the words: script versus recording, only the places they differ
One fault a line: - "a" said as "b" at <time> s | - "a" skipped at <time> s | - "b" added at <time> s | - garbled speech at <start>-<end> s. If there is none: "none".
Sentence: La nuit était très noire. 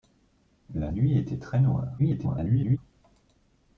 - garbled speech at 2.0-2.8 s